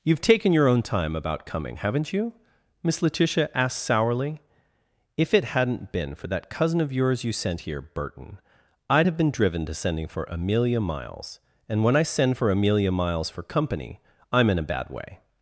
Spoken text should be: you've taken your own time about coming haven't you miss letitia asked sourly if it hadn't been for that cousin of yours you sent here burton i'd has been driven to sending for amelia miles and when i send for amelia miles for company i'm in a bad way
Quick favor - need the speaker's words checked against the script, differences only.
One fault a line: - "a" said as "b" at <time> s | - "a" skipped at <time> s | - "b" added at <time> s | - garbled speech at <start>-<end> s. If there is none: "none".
- "has" said as "have" at 9.1 s